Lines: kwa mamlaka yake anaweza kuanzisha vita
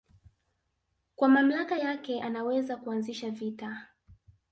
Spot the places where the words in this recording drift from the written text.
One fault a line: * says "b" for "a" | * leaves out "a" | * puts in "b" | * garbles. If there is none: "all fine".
all fine